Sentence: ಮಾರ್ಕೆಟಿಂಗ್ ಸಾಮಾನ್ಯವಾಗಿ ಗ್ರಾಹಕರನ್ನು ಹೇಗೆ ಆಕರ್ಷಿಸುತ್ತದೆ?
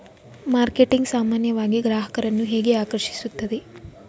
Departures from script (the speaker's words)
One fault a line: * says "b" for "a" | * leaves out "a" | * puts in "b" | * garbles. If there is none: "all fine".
all fine